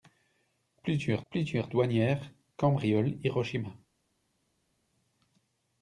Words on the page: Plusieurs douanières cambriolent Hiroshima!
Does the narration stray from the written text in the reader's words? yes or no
yes